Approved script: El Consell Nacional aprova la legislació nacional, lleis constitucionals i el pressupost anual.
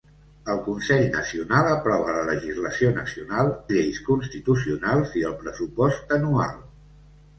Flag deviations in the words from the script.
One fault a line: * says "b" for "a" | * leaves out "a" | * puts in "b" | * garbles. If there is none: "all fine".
all fine